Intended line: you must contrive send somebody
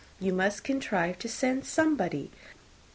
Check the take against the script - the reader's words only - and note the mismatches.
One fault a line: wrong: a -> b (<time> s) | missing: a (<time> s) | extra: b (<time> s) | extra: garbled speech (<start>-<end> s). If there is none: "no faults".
extra: to (1.2 s)